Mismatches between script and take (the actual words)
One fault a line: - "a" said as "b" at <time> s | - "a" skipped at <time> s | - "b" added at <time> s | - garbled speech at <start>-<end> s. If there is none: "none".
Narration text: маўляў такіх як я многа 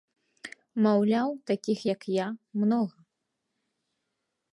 none